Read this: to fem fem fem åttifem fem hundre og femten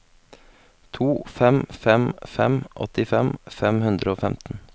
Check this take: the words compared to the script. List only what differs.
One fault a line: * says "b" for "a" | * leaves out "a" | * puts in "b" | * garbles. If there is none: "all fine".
all fine